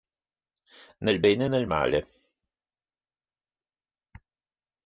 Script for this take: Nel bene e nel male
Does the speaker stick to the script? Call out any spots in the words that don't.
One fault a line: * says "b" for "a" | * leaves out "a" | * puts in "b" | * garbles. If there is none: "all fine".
all fine